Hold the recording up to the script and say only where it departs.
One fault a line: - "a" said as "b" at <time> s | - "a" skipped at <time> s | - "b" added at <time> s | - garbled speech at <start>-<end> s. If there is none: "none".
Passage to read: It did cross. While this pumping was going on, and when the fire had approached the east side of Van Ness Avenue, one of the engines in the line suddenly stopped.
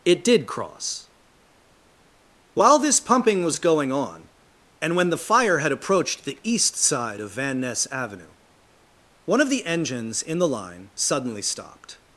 none